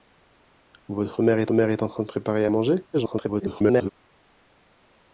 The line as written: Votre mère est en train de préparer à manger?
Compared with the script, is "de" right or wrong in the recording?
right